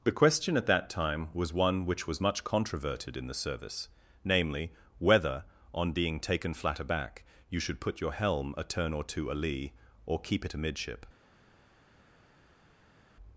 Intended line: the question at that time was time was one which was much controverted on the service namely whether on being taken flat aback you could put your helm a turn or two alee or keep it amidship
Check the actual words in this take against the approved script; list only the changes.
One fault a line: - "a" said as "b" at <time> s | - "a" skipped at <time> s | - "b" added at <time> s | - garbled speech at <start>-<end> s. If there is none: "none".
- "time was" skipped at 1.5 s
- "on" said as "in" at 3.1 s
- "could" said as "should" at 7.6 s